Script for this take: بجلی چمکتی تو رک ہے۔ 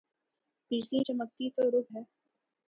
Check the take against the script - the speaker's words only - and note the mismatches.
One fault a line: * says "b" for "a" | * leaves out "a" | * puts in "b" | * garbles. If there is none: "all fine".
all fine